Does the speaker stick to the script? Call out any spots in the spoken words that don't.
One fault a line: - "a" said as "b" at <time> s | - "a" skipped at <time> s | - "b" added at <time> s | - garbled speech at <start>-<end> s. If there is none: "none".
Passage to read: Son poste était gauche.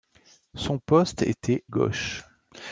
none